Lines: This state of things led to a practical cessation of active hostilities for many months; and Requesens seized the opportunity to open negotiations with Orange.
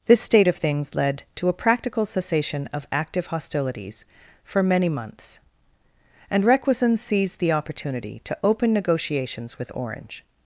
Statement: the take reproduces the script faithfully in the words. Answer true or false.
true